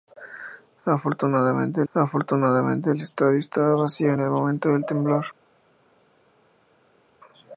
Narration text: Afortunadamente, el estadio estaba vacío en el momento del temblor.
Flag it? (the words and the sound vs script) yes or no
yes